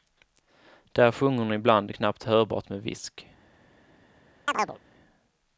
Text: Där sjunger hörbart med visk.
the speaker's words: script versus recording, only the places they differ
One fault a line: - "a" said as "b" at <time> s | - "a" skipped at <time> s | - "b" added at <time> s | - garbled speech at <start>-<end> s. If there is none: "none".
- "hon ibland knappt" added at 1.4 s